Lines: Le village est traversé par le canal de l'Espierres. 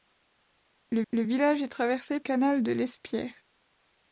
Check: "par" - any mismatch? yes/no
yes